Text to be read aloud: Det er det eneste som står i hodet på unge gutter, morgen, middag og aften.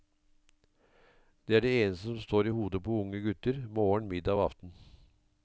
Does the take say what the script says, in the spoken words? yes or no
yes